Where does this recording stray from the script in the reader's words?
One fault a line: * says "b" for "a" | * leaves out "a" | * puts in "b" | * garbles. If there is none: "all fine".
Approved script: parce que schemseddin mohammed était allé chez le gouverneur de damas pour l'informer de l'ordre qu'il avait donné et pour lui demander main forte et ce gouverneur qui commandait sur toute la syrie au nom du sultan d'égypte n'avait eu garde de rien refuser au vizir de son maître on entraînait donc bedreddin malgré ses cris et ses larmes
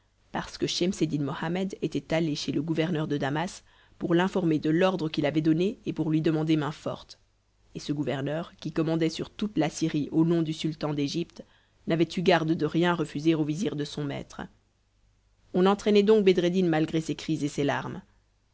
all fine